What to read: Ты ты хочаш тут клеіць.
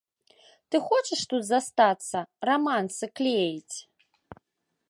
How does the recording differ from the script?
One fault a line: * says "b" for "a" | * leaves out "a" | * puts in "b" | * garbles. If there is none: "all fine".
* leaves out "ты"
* puts in "застацца рамансы"